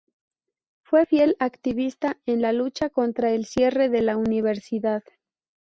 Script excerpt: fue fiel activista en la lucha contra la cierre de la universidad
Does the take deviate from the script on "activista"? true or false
false